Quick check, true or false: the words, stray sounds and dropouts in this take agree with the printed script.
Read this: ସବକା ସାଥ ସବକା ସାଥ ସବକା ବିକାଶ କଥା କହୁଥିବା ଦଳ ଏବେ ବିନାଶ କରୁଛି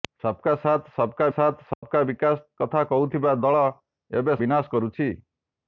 false